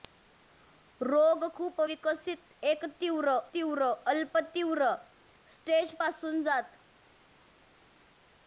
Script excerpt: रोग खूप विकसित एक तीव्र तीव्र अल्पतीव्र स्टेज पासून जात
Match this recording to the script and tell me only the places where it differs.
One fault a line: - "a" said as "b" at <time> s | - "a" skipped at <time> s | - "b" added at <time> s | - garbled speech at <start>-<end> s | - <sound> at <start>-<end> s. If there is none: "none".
none